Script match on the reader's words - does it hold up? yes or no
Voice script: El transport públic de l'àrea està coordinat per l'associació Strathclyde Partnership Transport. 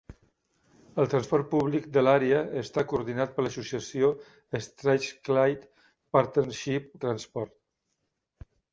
yes